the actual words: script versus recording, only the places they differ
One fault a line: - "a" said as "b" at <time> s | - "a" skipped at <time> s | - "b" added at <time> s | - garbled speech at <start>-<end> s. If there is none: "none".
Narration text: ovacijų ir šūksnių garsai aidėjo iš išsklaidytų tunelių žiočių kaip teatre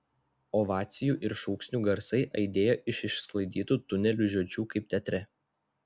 none